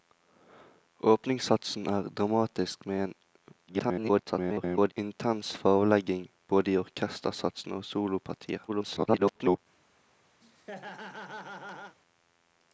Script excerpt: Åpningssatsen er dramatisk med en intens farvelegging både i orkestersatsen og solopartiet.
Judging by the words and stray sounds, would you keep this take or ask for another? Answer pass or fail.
fail